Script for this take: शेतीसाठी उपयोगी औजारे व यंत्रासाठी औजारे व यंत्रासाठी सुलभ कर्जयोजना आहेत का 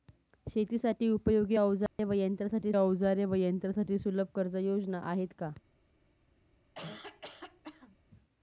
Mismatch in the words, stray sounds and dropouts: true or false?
true